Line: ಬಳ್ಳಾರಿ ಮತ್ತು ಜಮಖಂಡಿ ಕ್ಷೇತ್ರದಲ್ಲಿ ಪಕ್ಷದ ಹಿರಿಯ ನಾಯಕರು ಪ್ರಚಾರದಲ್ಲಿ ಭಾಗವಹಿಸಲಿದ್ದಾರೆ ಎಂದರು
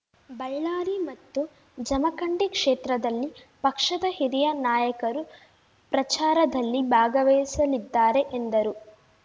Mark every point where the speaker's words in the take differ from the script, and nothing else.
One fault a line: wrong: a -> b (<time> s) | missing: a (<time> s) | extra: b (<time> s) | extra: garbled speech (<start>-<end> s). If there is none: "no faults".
no faults